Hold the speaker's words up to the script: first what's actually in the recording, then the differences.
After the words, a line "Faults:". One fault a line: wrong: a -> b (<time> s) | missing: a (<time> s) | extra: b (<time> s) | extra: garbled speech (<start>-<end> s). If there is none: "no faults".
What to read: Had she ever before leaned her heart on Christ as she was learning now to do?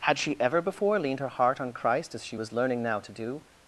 Had she ever before leaned her heart on Christ as she was learning now to do?
Faults:
no faults